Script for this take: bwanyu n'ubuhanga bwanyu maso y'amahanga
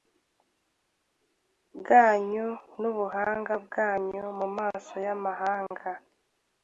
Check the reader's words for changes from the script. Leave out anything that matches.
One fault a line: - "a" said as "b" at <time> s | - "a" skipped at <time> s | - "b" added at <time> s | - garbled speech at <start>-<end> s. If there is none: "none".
- "mu" added at 4.4 s